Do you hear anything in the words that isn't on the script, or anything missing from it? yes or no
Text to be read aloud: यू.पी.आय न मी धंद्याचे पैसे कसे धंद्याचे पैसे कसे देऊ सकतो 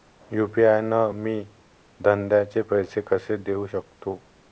yes